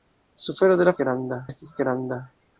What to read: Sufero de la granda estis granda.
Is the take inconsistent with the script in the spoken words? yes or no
no